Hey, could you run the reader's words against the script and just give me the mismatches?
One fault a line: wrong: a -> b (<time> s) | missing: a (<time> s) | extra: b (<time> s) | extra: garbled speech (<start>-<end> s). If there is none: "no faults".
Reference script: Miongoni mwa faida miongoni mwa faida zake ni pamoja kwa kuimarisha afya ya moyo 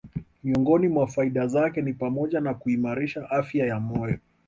missing: miongoni mwa faida (1.5 s)
wrong: kwa -> na (2.4 s)